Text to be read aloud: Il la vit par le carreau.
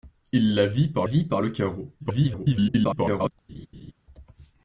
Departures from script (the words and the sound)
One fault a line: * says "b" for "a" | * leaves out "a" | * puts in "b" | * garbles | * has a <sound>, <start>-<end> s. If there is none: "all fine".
* puts in "vit par"
* garbles
* has a laugh, 3.5-3.9 s